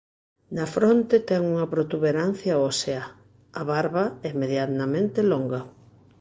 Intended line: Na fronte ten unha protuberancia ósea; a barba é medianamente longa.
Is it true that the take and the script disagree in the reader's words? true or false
false